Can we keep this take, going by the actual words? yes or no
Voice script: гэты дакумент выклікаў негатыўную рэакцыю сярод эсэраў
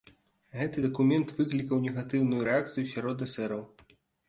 yes